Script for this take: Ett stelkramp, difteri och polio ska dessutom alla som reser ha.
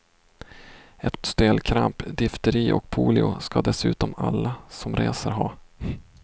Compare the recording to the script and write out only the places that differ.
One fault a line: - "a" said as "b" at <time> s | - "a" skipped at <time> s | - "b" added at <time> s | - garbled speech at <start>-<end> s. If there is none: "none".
none